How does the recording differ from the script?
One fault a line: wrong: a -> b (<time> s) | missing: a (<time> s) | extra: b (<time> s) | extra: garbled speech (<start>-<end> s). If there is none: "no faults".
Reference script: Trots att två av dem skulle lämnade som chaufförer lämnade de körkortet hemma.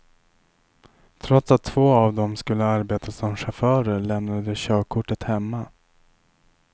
wrong: lämnade -> arbeta (2.6 s)